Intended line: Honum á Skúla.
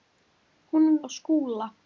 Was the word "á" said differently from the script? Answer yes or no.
no